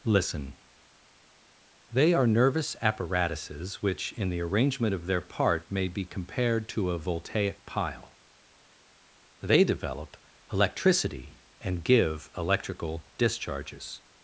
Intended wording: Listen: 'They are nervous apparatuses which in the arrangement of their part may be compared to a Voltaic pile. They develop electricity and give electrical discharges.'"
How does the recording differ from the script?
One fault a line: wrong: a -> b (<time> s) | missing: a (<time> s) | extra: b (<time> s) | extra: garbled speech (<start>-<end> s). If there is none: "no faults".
no faults